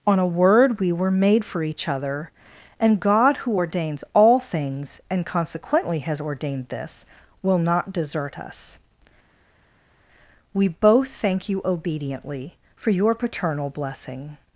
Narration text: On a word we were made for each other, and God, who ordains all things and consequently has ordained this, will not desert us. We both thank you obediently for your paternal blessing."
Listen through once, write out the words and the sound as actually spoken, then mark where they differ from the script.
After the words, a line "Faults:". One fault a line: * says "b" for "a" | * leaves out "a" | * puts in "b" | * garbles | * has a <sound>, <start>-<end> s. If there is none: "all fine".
On a word we were made for each other, and God, who ordains all things and consequently has ordained this, will not desert us. We both thank you obediently for your paternal blessing."
Faults:
all fine